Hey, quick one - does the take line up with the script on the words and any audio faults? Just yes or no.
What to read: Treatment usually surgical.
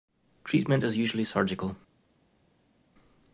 no